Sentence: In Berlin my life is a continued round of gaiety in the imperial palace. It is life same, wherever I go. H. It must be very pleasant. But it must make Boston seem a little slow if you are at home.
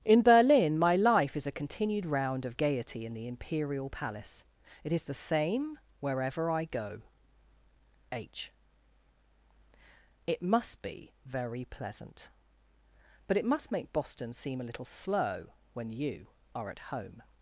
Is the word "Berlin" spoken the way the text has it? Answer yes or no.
yes